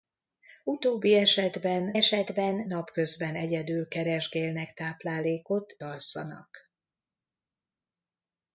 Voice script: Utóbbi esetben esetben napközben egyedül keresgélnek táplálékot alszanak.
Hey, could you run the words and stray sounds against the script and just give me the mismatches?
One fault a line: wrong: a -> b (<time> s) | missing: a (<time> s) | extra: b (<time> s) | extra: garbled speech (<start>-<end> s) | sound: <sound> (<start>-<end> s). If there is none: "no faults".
no faults